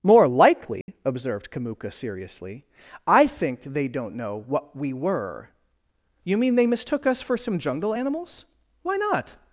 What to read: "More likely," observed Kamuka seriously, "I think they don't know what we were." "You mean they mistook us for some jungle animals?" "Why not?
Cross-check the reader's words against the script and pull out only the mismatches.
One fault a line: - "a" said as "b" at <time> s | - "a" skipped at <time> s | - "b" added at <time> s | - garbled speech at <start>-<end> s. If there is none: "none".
none